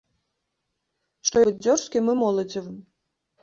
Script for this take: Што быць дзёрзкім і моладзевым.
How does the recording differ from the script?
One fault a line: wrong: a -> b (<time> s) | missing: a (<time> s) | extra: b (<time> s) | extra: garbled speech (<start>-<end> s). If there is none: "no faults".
no faults